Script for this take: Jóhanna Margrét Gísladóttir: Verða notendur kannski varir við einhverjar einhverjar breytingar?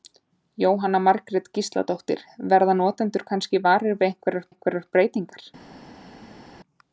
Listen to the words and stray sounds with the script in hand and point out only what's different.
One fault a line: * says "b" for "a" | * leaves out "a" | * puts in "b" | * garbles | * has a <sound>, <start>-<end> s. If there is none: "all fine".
all fine